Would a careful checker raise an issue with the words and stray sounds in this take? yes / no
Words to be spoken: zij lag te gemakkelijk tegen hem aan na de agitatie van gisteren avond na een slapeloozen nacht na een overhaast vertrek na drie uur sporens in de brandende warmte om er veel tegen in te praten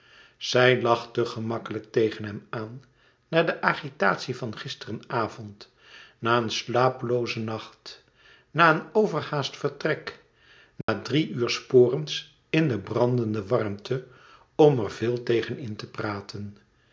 yes